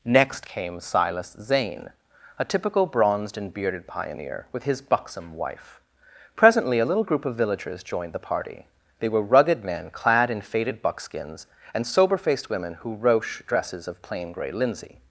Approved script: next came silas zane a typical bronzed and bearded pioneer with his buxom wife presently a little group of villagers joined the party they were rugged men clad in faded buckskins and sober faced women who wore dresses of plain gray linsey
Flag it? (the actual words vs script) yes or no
yes